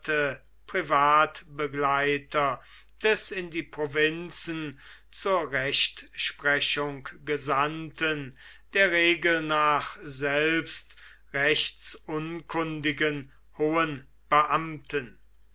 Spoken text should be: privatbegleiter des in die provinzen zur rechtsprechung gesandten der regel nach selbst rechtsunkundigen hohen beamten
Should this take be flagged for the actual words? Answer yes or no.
no